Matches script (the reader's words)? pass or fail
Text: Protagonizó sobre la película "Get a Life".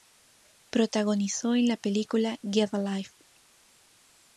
fail